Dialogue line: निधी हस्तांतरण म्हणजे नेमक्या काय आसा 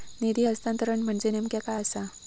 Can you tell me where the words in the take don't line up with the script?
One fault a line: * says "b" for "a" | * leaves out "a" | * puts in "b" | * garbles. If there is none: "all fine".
all fine